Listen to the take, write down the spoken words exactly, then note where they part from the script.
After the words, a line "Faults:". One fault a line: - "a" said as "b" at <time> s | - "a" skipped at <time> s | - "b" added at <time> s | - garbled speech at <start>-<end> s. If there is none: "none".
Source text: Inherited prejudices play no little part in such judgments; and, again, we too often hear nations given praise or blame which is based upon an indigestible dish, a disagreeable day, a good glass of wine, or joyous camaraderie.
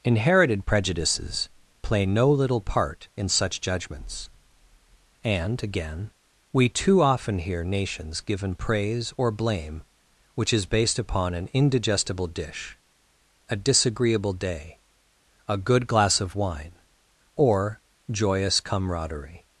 Inherited prejudices play no little part in such judgments; and, again, we too often hear nations given praise or blame which is based upon an indigestible dish, a disagreeable day, a good glass of wine, or joyous camaraderie.
Faults:
none